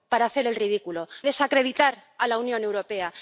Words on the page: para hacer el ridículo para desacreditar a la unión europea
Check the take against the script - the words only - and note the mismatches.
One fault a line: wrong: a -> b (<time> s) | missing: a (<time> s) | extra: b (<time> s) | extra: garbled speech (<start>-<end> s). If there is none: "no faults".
missing: para (1.1 s)